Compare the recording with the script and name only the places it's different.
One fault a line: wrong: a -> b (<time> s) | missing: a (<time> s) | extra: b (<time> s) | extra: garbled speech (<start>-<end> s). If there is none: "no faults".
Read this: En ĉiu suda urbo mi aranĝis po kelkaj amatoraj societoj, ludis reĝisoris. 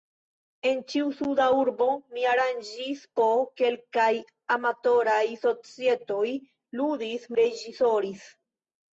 no faults